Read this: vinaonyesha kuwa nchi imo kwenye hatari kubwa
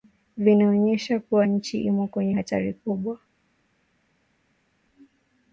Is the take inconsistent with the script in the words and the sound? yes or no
no